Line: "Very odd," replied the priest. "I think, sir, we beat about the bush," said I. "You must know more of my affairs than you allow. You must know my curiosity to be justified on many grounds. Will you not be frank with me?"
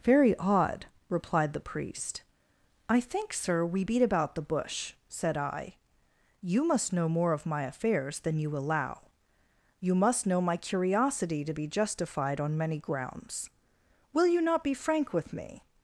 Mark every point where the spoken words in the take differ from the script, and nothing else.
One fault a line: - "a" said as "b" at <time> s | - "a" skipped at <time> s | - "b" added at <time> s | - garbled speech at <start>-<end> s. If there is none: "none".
none